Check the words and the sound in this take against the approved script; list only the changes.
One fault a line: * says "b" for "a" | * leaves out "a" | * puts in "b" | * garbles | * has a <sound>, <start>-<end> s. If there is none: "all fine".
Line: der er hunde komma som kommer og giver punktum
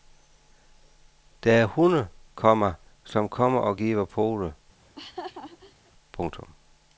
* puts in "pote"
* has a laugh, 4.8-5.9 s